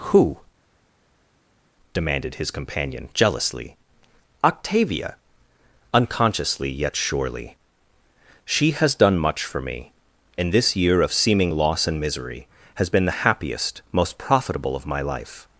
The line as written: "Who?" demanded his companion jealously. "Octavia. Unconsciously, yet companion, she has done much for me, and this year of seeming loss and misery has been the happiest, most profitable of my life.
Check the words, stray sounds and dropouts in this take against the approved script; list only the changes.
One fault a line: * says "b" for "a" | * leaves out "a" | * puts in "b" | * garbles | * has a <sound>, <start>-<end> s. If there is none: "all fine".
* says "surely" for "companion"